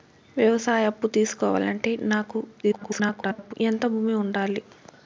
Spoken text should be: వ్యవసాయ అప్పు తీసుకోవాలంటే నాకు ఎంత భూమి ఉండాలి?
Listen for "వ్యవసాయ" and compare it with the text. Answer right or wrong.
right